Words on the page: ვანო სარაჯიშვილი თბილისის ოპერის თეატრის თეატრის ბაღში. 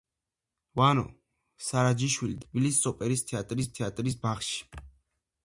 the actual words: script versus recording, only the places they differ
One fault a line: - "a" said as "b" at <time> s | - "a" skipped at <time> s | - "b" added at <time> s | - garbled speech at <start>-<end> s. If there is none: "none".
none